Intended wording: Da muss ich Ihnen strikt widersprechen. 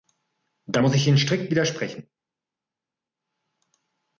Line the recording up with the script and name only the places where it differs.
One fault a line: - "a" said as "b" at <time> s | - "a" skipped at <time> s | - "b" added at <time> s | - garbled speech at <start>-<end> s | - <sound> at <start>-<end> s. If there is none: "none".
none